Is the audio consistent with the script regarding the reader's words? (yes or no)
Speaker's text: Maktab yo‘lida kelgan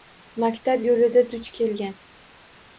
no